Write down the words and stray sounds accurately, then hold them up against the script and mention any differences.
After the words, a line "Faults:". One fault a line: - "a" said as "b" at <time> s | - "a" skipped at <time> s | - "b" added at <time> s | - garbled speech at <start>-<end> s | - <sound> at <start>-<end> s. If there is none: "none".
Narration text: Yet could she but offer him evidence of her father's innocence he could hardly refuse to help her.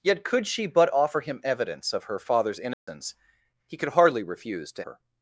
Yet could she but offer him evidence of her father's innocence he could hardly refuse to her.
Faults:
- dropout at 2.7-2.9 s
- "help" skipped at 4.8 s